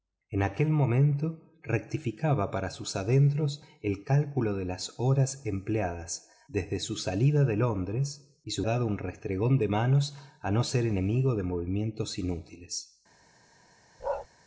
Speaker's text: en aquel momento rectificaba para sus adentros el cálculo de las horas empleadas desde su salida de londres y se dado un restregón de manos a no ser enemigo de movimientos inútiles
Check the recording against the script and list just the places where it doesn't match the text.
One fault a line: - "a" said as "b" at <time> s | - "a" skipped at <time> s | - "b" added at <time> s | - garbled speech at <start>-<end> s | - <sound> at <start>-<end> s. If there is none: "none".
- bark at 14.0-14.3 s